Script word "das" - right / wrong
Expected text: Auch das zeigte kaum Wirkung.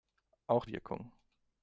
wrong